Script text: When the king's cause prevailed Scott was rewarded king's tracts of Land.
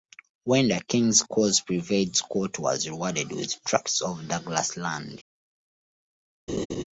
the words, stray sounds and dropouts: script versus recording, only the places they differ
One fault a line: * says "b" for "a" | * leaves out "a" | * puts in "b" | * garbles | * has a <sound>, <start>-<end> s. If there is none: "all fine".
* says "with" for "king's"
* puts in "Douglas"
* has a laugh, 6.5-6.8 s